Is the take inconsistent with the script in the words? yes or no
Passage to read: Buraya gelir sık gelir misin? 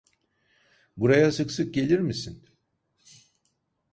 yes